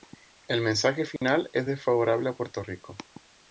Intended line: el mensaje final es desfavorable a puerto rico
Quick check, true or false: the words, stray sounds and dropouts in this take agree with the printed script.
false